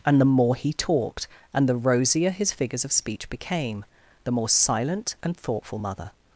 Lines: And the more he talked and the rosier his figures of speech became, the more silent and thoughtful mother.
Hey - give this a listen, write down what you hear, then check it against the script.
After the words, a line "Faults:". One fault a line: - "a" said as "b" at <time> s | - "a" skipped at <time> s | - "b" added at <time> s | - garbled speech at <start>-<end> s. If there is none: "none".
And the more he talked and the rosier his figures of speech became, the more silent and thoughtful mother.
Faults:
none